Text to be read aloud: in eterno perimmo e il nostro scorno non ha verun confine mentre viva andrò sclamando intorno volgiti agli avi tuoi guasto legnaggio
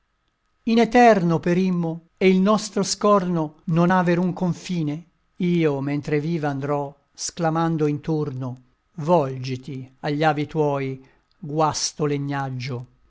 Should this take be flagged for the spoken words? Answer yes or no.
yes